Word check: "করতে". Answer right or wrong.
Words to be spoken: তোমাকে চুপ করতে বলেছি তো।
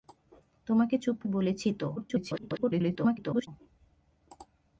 wrong